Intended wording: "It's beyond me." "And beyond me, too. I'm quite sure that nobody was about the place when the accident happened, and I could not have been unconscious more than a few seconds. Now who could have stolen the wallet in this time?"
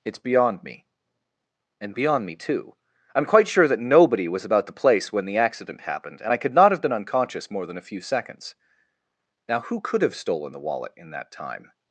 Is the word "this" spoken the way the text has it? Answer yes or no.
no